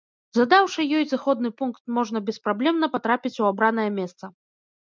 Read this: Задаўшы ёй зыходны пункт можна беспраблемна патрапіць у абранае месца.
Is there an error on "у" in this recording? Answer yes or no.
no